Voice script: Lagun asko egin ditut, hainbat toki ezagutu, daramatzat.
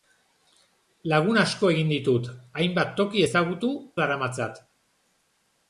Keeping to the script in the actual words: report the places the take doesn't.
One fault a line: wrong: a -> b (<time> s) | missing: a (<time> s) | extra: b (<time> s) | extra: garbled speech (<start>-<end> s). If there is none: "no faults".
no faults